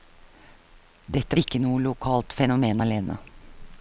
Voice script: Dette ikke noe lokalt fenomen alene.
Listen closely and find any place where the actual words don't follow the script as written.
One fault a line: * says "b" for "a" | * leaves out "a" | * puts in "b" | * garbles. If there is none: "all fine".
all fine